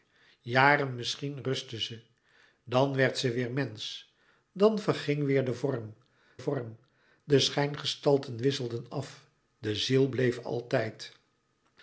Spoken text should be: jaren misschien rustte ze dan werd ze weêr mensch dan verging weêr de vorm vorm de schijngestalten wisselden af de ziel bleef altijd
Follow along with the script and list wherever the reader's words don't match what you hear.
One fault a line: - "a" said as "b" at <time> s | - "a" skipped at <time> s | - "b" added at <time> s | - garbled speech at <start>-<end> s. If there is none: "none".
none